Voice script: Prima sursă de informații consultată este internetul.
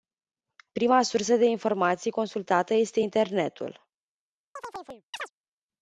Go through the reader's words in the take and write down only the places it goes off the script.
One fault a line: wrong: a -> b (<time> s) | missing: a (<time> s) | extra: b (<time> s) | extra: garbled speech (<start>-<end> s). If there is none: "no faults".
no faults